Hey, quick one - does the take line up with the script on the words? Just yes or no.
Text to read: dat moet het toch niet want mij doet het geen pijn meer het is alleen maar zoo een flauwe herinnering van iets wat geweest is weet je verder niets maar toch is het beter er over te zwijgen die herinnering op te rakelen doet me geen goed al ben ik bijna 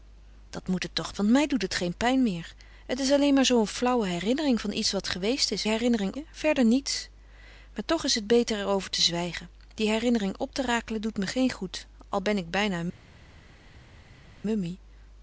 no